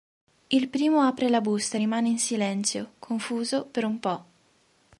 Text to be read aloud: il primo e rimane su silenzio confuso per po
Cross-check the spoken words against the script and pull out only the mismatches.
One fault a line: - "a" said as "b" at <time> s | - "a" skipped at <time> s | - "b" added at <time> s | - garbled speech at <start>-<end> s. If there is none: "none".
- "apre la busta" added at 1.0 s
- "su" said as "in" at 2.1 s
- "un" added at 3.8 s